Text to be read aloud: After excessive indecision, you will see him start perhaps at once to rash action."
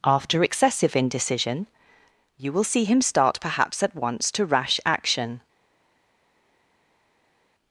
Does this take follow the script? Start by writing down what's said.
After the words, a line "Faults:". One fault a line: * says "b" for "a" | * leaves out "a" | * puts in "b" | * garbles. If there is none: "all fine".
After excessive indecision, you will see him start perhaps at once to rash action."
Faults:
all fine